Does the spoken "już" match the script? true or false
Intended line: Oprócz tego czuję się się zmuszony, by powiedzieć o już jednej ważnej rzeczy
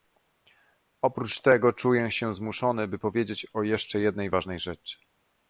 false